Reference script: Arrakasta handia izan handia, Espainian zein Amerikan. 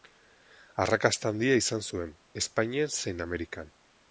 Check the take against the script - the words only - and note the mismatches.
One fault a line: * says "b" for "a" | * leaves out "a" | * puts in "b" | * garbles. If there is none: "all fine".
* says "zuen" for "handia"